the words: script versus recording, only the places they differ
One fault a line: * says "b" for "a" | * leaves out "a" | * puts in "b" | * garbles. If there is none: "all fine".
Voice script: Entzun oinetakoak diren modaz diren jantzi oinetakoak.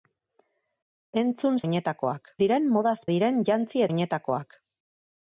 all fine